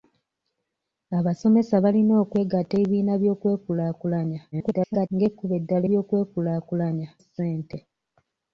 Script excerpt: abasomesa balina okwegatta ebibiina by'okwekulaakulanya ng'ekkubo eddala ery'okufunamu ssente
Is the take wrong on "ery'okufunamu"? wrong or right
wrong